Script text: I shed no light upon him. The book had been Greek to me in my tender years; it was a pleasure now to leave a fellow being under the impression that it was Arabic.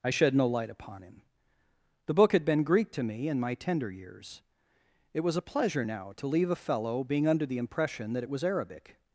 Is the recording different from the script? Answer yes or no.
no